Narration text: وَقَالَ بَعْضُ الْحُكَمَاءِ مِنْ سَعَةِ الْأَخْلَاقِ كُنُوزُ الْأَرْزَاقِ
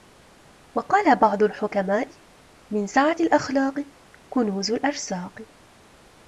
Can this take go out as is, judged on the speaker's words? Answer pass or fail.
pass